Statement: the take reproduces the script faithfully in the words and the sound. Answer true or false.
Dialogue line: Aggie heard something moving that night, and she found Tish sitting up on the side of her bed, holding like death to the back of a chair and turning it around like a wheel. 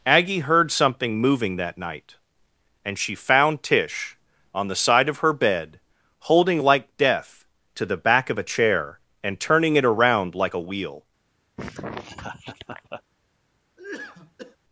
false